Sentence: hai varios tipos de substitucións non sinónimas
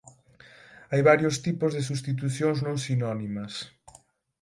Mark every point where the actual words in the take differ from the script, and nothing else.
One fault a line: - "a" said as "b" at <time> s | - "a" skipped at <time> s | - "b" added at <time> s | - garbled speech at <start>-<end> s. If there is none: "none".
none